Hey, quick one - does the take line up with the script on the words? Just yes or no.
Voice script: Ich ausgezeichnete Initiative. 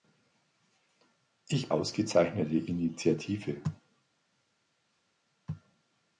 yes